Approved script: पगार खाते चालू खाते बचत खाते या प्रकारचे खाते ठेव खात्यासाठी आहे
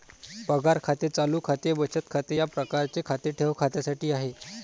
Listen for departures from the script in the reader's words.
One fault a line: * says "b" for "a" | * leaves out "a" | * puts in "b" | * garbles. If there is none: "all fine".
all fine